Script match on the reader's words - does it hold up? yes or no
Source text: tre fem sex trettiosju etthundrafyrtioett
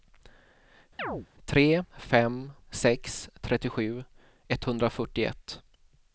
yes